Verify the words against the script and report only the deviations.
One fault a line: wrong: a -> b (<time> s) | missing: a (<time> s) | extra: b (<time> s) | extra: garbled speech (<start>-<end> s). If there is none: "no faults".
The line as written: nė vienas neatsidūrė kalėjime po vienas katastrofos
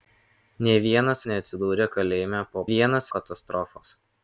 no faults